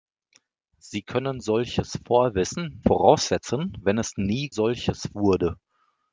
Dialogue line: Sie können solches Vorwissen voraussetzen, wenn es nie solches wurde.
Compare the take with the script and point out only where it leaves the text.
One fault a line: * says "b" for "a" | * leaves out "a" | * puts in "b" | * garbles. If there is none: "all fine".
all fine